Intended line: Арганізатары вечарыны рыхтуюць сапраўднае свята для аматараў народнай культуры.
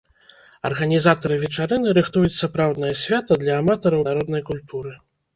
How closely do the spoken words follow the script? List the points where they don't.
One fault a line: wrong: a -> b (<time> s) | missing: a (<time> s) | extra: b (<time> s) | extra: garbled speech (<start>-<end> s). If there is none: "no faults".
no faults